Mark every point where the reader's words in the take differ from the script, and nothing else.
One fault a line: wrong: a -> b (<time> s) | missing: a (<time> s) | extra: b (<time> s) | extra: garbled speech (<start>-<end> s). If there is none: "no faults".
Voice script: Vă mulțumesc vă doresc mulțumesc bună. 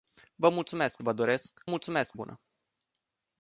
no faults